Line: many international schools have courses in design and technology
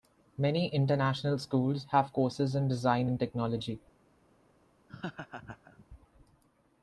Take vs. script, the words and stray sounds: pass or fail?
fail